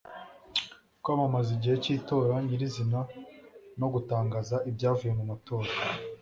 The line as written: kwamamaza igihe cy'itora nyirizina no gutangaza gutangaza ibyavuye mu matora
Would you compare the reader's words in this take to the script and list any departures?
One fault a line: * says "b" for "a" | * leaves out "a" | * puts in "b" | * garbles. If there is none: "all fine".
* leaves out "gutangaza"